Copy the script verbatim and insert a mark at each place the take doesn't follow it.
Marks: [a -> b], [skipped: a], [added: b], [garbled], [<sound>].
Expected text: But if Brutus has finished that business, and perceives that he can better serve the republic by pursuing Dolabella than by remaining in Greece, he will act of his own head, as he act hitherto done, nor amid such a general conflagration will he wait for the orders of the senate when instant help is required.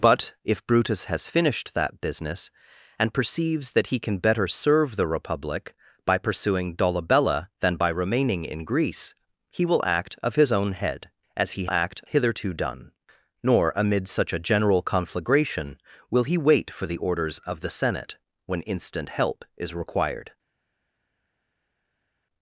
But if Brutus has finished that business, and perceives that he can better serve the republic by pursuing Dolabella than by remaining in Greece, he will act of his own head, as he act hitherto done, nor amid such a general conflagration will he wait for the orders of the senate when instant help is required.